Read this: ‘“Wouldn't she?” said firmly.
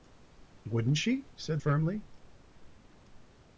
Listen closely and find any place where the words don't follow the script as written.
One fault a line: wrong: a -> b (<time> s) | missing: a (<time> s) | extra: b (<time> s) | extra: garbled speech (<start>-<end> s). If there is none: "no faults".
no faults